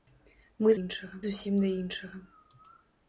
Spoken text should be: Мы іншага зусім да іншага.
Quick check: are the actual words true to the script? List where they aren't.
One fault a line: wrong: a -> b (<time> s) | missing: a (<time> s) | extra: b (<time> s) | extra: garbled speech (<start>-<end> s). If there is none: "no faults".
no faults